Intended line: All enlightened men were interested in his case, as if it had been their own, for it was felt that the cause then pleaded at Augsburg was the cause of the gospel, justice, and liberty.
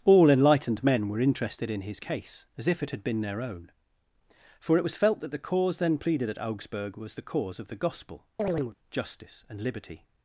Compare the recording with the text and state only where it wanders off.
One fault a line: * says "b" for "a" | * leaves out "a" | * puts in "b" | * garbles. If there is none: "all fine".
all fine